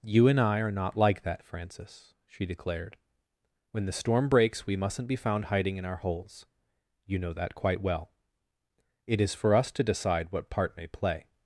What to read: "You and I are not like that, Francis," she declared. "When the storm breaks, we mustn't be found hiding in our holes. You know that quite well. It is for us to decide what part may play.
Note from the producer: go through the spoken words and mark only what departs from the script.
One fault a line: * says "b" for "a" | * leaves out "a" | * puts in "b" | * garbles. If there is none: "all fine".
all fine